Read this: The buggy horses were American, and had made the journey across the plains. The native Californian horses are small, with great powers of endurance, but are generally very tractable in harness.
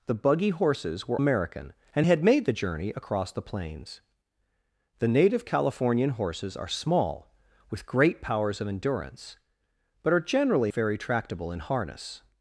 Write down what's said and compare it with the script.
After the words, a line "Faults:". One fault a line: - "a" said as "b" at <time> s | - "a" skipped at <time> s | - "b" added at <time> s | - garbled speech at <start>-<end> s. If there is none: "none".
The buggy horses were American, and had made the journey across the plains. The native Californian horses are small, with great powers of endurance, but are generally very tractable in harness.
Faults:
none